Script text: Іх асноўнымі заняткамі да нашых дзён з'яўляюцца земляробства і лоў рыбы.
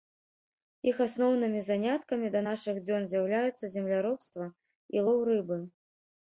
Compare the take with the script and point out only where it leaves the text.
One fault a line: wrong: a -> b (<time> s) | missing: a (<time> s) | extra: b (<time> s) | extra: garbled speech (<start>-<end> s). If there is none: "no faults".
no faults